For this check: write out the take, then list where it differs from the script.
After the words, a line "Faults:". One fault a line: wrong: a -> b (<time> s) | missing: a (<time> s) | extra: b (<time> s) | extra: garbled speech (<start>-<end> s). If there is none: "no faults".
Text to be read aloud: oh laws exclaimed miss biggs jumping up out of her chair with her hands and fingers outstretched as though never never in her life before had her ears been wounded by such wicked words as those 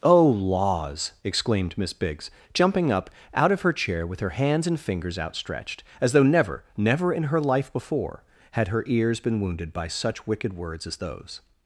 oh laws exclaimed miss biggs jumping up out of her chair with her hands and fingers outstretched as though never never in her life before had her ears been wounded by such wicked words as those
Faults:
no faults